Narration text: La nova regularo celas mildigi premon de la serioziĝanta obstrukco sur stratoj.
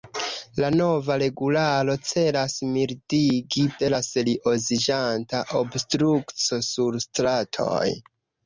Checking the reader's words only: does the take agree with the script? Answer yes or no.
no